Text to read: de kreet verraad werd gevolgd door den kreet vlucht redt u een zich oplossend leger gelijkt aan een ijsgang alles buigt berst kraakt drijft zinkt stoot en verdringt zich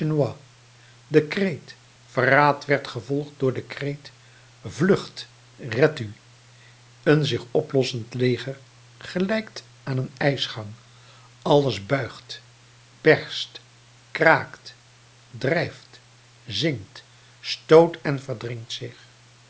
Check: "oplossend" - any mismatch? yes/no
no